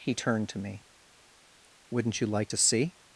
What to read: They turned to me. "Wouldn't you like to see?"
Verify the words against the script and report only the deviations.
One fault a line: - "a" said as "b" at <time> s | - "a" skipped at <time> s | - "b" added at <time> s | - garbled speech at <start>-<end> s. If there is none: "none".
- "They" said as "He" at 0.0 s